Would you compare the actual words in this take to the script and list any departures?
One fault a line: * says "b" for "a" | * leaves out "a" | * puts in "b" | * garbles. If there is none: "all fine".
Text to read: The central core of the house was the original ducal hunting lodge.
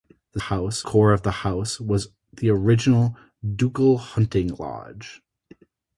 * says "house" for "central"